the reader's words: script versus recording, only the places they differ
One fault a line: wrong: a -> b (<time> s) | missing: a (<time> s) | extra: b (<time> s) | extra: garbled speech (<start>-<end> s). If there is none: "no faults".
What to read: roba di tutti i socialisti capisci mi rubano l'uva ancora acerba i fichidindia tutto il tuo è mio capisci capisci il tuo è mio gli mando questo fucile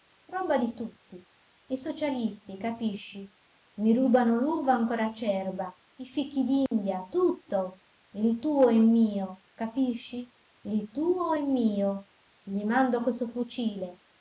missing: capisci (10.3 s)